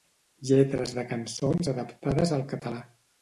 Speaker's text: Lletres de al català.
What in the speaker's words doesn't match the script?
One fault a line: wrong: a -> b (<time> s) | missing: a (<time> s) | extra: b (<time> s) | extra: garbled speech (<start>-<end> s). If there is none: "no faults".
extra: cançons adaptades (1.1 s)